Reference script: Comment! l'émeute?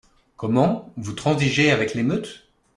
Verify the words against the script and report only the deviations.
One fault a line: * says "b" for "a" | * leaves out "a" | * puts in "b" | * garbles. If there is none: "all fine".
* puts in "vous transigez avec"